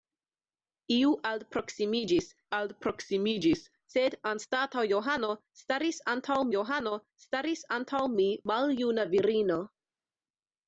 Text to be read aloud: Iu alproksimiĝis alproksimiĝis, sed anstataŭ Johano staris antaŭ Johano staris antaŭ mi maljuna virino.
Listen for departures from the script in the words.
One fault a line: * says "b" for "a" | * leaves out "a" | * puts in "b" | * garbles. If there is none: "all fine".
all fine